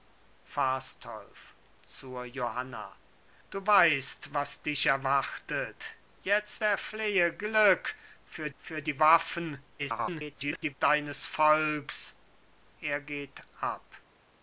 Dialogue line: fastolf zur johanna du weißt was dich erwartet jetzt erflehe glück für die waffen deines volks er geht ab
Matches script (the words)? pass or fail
fail